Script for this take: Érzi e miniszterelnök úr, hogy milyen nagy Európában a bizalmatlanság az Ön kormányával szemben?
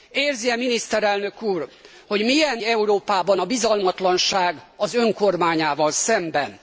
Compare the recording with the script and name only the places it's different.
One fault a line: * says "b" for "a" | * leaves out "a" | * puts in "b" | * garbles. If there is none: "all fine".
* leaves out "nagy"